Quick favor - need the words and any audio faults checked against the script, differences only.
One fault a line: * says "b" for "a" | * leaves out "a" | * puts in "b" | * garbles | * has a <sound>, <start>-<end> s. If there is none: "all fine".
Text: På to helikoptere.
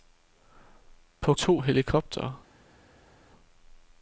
all fine